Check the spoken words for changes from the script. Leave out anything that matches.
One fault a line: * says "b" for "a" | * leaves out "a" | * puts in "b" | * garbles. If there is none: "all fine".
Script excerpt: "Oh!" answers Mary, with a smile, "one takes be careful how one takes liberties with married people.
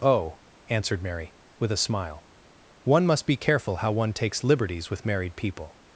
* says "answered" for "answers"
* says "must" for "takes"